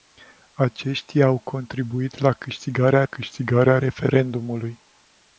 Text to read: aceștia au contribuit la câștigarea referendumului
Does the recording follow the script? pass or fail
fail